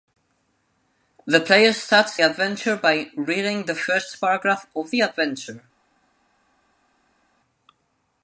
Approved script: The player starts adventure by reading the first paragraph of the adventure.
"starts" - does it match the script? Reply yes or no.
yes